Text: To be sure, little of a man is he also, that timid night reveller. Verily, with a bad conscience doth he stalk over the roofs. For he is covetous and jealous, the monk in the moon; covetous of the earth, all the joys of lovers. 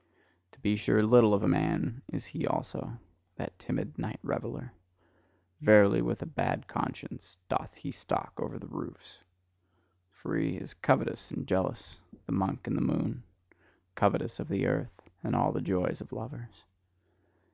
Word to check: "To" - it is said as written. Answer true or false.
true